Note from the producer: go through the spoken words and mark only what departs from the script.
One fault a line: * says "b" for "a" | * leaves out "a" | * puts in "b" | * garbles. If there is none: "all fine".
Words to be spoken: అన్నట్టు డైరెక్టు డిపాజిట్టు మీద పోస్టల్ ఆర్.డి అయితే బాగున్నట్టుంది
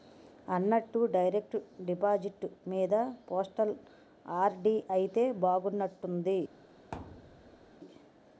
all fine